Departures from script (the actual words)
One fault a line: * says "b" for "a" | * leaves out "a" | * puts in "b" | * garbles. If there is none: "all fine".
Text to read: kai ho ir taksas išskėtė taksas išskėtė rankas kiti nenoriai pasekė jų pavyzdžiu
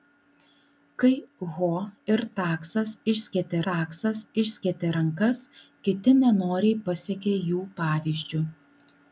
all fine